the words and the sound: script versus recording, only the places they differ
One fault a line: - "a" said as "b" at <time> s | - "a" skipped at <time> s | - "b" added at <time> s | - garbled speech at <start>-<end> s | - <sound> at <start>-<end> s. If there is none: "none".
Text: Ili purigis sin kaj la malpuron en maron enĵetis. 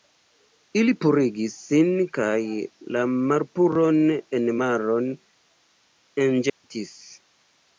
- dropout at 6.5-6.6 s